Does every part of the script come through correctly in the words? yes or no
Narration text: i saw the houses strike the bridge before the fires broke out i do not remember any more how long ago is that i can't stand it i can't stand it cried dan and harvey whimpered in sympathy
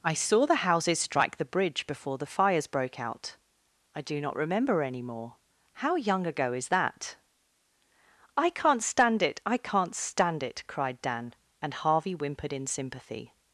no